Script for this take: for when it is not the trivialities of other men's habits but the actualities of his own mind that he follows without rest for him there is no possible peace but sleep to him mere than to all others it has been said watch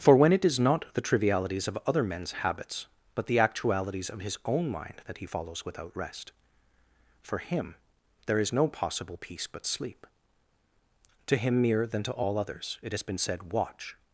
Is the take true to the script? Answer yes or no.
yes